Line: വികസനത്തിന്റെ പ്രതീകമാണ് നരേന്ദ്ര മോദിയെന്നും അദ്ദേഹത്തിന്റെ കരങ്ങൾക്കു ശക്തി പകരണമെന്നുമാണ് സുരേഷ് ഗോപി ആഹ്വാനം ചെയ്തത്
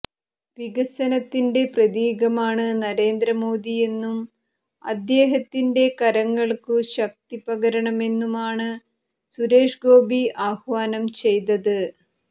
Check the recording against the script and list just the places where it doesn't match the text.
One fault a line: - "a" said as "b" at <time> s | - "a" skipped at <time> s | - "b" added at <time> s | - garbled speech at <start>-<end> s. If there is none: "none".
none